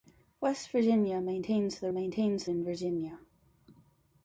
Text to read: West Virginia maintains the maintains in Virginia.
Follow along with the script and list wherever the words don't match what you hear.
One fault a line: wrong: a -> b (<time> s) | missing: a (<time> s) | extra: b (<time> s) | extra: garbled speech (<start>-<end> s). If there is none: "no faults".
no faults